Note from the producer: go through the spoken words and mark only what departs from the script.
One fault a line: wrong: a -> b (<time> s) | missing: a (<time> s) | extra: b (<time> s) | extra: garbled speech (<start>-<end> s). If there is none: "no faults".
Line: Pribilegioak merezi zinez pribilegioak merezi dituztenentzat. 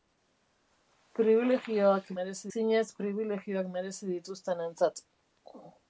no faults